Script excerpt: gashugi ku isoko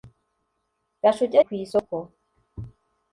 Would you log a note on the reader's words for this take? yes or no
no